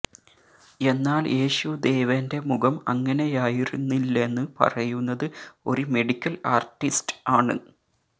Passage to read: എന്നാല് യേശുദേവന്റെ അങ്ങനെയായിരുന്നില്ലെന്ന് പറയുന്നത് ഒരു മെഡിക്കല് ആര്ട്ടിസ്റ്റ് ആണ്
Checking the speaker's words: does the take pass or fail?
fail